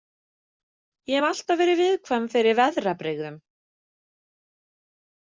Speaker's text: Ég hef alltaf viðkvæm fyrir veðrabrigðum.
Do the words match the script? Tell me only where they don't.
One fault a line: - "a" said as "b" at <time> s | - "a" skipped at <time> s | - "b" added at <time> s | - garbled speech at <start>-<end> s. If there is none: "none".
- "verið" added at 1.6 s